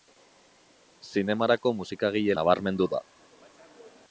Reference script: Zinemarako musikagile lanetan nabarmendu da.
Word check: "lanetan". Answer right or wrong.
wrong